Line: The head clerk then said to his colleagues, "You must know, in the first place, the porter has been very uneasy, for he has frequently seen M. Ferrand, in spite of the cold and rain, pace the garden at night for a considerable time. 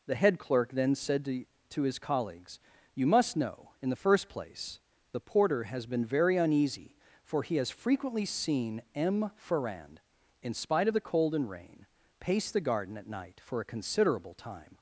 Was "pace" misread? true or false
false